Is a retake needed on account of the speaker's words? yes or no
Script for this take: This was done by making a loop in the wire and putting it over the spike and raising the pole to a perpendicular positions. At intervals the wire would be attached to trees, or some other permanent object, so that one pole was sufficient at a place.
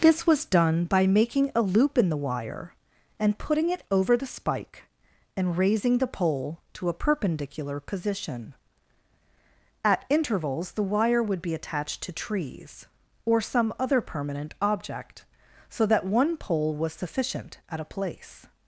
yes